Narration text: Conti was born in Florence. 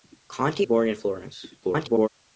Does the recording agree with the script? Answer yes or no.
no